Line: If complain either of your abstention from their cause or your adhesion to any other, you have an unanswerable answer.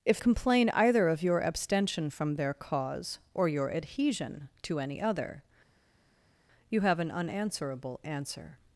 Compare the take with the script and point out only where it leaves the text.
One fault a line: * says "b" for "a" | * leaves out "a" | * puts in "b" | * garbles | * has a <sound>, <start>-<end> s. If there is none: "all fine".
all fine